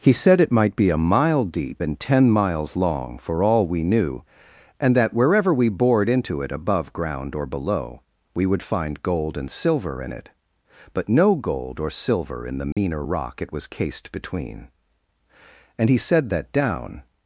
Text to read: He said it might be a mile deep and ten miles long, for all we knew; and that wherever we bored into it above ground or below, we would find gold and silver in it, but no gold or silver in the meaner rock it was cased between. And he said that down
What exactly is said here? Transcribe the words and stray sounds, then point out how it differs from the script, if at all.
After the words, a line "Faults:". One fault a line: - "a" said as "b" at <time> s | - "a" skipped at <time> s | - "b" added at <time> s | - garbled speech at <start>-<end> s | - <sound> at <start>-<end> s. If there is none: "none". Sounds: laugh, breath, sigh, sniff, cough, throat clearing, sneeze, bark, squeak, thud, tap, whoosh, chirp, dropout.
He said it might be a mile deep and ten miles long, for all we knew; and that wherever we bored into it above ground or below, we would find gold and silver in it, but no gold or silver in the meaner rock it was cased between. And he said that down
Faults:
- dropout at 12.7-12.8 s